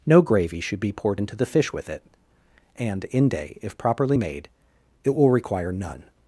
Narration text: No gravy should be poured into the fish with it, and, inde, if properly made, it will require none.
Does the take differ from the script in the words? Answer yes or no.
no